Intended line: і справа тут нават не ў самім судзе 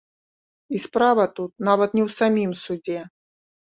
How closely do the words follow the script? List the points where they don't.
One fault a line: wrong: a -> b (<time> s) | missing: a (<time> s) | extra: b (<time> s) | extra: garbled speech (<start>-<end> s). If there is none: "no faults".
no faults